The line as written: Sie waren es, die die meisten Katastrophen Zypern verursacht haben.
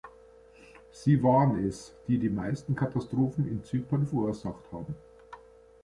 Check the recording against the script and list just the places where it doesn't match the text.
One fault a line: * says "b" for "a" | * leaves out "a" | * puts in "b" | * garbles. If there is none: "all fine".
* puts in "in"